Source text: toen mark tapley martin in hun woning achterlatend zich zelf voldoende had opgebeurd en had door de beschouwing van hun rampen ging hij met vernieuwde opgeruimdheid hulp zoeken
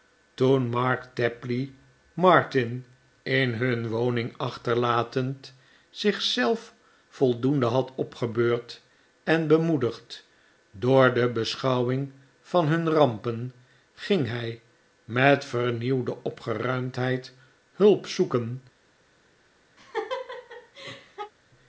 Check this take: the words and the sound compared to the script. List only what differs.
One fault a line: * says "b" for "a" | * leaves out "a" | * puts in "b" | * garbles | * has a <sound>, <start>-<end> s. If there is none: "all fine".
* says "bemoedigd" for "had"
* has a laugh, 19.8-21.3 s